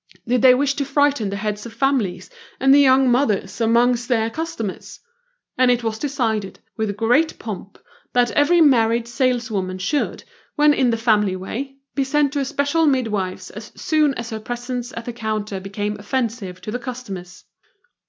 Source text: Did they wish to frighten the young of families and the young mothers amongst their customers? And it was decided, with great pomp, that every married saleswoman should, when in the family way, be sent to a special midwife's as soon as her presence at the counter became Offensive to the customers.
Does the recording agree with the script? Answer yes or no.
no